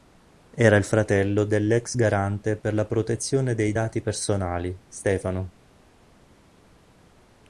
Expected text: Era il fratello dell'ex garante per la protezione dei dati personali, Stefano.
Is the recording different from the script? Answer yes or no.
no